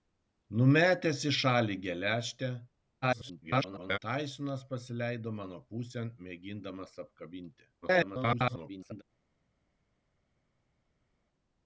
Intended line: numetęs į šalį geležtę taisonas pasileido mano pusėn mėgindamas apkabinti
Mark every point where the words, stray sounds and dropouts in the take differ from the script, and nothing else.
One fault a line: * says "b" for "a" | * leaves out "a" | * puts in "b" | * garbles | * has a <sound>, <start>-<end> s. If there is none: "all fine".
* garbles
* garbles